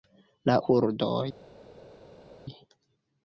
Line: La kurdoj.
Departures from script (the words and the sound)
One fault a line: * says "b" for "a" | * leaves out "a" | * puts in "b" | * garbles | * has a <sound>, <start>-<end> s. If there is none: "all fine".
all fine